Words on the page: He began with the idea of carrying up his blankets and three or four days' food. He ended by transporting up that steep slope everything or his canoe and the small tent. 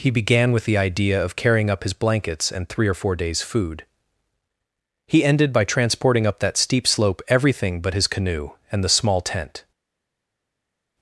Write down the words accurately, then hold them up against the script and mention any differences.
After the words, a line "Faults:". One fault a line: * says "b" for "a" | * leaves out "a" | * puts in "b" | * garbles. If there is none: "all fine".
He began with the idea of carrying up his blankets and three or four days' food. He ended by transporting up that steep slope everything but his canoe and the small tent.
Faults:
* says "but" for "or"